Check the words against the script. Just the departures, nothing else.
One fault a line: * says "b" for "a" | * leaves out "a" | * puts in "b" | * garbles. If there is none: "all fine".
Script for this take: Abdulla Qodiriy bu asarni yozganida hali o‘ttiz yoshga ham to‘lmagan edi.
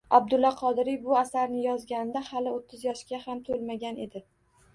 all fine